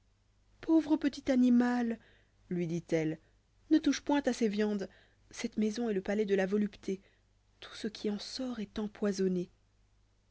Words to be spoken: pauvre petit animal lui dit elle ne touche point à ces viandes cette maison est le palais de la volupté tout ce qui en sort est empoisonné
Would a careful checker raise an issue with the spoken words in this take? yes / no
no